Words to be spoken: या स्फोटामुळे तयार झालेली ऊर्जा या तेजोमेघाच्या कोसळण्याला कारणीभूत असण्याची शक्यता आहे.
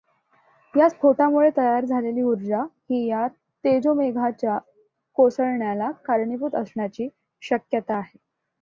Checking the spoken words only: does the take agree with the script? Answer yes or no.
no